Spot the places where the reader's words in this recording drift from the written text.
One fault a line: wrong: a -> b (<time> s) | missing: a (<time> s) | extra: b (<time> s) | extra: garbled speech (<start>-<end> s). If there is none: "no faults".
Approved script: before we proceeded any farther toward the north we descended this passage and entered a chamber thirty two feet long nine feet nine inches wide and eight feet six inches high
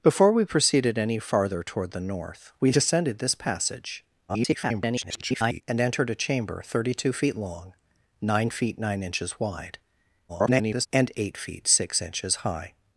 extra: garbled speech (4.3-5.6 s)
extra: garbled speech (10.3-10.9 s)